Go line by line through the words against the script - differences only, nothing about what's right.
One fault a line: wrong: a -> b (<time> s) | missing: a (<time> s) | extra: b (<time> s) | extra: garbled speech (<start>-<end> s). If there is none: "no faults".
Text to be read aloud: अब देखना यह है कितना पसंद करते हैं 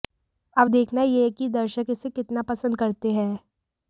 extra: कि दर्शक इसे (1.3 s)